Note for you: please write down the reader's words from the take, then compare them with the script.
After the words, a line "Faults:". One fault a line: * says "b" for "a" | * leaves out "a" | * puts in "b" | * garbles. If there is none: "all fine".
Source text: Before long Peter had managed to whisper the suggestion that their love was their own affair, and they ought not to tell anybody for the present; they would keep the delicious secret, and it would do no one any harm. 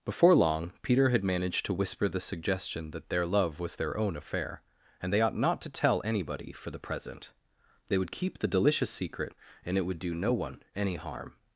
Before long Peter had managed to whisper the suggestion that their love was their own affair, and they ought not to tell anybody for the present; they would keep the delicious secret, and it would do no one any harm.
Faults:
all fine